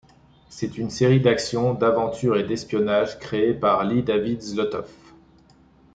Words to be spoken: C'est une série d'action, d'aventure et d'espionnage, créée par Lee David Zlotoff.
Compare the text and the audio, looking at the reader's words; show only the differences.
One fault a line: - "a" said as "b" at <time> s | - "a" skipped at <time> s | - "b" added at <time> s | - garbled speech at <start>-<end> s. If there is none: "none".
none